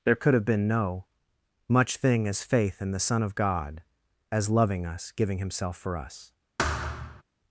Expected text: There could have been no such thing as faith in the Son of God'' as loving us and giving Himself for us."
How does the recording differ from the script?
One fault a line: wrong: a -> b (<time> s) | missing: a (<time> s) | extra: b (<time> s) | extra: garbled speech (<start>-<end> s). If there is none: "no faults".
wrong: such -> much (1.7 s)
missing: and (5.1 s)